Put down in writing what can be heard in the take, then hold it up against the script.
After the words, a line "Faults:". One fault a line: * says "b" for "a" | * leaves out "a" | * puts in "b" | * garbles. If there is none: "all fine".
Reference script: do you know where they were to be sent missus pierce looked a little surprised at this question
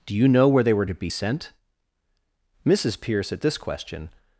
do you know where they were to be sent missus pierce at this question
Faults:
* leaves out "looked a little surprised"